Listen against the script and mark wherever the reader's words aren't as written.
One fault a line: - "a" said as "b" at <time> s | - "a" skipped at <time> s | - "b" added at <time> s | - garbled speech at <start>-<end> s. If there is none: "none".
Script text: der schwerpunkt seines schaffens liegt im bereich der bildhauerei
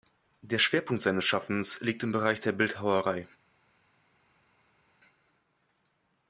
none